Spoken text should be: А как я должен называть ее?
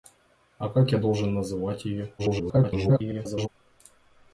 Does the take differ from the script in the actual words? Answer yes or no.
yes